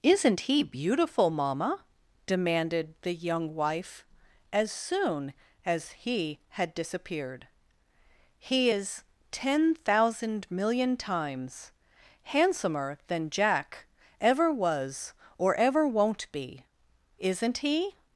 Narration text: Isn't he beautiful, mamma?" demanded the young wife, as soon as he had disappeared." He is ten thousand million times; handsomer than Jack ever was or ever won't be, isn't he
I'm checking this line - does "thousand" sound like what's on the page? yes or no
yes